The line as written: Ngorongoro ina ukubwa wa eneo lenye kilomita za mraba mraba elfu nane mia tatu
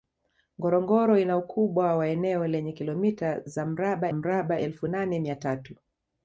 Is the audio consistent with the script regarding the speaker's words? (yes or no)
yes